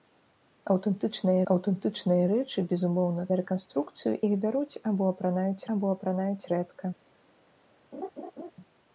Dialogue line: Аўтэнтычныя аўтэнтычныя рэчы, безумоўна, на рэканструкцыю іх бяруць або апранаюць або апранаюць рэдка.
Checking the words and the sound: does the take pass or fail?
fail